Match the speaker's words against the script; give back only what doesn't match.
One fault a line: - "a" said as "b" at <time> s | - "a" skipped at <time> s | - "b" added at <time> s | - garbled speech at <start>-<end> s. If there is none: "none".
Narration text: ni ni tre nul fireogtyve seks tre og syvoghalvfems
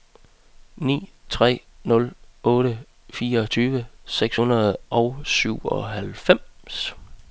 - "ni" skipped at 1.1 s
- "otte" added at 2.4 s
- "tre" said as "hundrede" at 4.4 s